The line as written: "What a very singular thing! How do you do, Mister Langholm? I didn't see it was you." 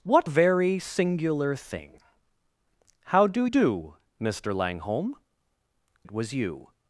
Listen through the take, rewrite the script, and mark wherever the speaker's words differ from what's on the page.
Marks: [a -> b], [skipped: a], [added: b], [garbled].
"What [skipped: a] very singular thing! How do [skipped: you] do, Mister Langholm? [skipped: I didn't see] it was you."